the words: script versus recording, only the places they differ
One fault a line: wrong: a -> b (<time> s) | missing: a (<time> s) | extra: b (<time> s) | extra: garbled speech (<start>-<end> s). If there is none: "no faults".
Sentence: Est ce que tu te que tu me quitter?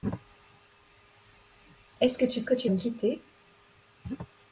no faults